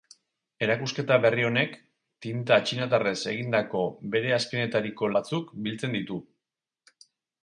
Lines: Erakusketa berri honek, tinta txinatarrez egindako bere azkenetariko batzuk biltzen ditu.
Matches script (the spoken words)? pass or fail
pass